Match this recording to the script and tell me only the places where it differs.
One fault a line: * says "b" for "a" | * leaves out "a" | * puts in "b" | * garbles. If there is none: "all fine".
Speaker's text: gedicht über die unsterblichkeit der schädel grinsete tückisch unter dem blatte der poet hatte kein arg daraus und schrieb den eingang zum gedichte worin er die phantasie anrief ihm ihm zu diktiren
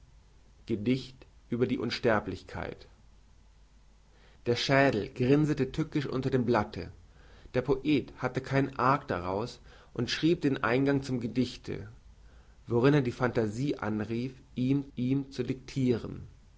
all fine